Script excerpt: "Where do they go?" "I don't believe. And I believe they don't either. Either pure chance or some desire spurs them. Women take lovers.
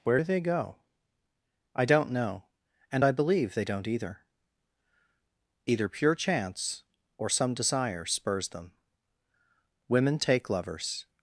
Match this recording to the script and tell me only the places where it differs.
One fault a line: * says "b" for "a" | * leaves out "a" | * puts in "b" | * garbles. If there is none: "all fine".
* says "know" for "believe"